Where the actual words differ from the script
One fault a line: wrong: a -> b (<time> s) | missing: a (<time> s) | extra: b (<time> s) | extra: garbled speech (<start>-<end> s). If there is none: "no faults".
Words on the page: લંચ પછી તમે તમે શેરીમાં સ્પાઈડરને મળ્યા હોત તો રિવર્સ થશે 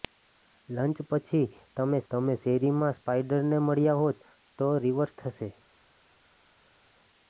no faults